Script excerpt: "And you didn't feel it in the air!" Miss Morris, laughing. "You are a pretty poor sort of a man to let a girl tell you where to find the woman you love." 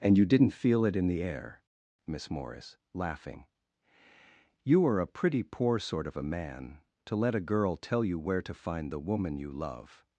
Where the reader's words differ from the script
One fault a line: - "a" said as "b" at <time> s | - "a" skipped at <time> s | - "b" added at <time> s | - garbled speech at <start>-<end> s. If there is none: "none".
none